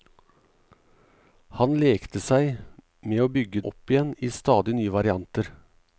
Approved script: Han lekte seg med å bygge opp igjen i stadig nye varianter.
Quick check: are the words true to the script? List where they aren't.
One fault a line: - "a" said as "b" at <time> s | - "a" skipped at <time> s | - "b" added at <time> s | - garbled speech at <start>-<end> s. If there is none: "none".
none